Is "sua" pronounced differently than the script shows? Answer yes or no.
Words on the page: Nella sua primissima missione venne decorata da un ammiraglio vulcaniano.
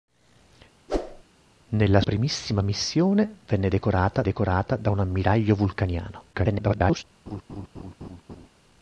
yes